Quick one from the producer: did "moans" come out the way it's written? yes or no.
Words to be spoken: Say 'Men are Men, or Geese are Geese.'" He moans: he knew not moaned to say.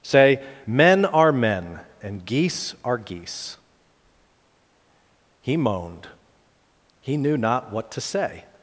no